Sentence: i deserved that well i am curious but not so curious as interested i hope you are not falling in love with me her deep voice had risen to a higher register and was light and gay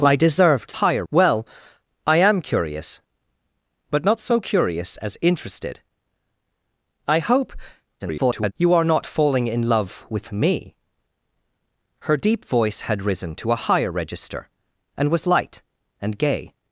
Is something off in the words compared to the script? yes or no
yes